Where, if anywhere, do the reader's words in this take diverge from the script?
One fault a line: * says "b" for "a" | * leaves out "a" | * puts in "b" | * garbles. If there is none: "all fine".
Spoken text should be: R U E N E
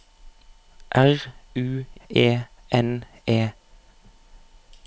all fine